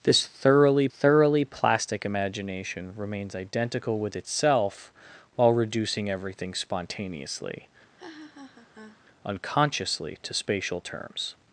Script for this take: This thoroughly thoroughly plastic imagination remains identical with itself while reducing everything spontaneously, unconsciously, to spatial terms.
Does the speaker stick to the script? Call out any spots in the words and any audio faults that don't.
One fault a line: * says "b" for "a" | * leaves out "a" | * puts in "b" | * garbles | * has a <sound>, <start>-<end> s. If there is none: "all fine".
* has a laugh, 8.0-9.0 s